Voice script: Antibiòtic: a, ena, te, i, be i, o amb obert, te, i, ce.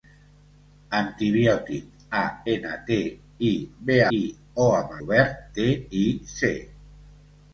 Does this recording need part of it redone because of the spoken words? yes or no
no